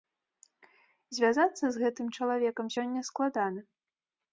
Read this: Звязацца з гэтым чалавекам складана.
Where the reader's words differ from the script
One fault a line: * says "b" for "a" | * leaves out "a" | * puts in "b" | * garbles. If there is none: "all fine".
* puts in "сёння"